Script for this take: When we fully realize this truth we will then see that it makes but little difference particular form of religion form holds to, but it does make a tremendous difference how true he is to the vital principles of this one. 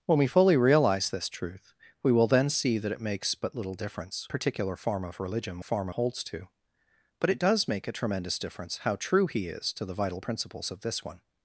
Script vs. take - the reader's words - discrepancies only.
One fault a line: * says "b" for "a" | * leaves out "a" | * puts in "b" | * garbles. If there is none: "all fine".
all fine